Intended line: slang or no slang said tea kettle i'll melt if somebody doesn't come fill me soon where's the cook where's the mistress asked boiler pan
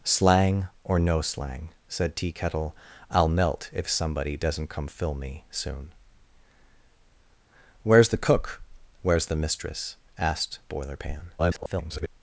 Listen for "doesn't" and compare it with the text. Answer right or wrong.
right